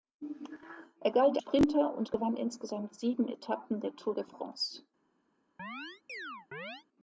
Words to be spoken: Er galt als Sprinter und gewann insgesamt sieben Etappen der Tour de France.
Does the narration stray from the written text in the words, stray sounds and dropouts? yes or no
yes